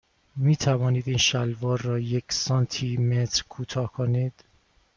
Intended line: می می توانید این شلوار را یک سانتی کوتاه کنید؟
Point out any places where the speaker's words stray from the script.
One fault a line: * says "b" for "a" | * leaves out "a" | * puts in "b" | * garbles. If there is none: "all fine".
* leaves out "می"
* puts in "متر"